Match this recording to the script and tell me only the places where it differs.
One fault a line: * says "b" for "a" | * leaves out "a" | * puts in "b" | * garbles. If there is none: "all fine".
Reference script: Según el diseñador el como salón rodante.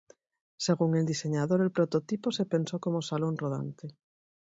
* puts in "prototipo se pensó"